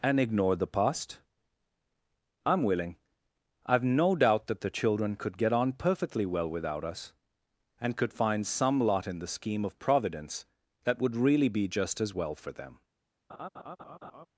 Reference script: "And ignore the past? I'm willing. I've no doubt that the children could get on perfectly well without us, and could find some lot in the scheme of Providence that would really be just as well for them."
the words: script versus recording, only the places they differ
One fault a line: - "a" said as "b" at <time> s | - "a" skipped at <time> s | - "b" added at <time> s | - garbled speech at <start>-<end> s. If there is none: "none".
none